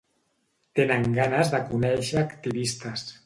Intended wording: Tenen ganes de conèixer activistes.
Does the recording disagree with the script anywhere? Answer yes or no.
no